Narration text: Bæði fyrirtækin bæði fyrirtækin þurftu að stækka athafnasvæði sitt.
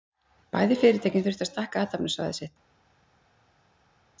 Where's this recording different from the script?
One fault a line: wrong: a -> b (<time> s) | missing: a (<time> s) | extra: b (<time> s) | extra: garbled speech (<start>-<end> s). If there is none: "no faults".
missing: bæði fyrirtækin (1.3 s)